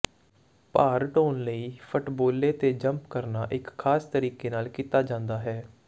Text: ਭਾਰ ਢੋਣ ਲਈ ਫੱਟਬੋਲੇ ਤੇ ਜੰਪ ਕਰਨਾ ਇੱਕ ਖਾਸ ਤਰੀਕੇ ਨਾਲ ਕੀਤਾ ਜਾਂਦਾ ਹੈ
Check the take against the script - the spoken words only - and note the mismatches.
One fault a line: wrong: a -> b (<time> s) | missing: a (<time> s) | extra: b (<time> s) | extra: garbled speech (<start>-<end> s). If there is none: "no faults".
no faults